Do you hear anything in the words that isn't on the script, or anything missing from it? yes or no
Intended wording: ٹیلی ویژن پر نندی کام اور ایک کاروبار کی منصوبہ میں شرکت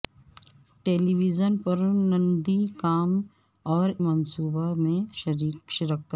yes